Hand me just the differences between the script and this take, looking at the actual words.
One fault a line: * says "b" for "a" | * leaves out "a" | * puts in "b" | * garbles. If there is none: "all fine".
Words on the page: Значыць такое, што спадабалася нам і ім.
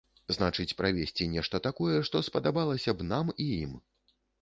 * puts in "правесці нешта"
* puts in "б"